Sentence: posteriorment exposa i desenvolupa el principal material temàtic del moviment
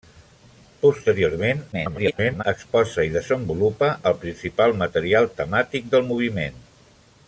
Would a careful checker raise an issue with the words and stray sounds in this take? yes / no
yes